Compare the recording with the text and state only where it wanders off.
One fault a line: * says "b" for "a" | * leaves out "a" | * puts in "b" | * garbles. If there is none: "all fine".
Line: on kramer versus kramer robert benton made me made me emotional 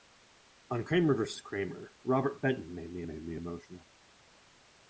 all fine